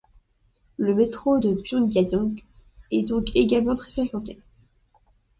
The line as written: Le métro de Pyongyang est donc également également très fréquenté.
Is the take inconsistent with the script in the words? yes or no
yes